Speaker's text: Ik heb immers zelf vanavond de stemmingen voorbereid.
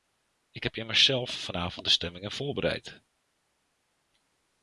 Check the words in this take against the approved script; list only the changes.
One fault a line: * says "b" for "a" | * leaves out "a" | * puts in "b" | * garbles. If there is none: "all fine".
all fine